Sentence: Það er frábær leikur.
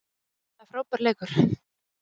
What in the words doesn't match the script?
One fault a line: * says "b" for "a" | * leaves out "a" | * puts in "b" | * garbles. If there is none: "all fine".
all fine